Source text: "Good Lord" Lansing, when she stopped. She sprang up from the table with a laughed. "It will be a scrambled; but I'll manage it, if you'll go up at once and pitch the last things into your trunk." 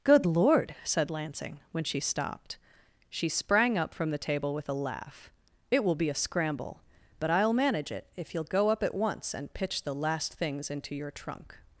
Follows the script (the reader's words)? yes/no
no